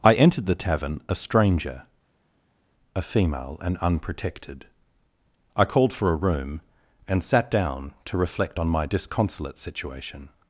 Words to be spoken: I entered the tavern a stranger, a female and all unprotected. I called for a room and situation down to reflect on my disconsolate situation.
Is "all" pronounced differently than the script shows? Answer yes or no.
yes